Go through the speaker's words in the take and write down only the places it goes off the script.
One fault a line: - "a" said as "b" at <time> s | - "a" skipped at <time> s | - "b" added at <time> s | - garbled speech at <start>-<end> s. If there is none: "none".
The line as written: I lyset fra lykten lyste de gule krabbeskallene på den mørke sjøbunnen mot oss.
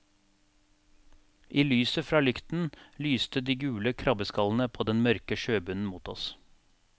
none